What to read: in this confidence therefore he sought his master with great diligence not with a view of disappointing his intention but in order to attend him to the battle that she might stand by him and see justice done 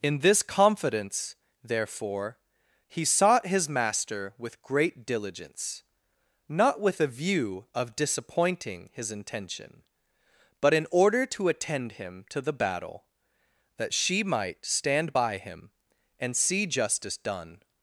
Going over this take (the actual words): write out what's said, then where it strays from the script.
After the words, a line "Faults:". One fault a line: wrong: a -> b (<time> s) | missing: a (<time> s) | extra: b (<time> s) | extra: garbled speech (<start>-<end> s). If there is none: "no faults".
in this confidence therefore he sought his master with great diligence not with a view of disappointing his intention but in order to attend him to the battle that she might stand by him and see justice done
Faults:
no faults